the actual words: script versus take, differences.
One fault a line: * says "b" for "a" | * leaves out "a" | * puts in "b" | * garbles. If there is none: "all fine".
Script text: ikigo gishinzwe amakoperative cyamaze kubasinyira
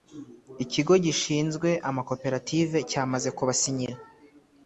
all fine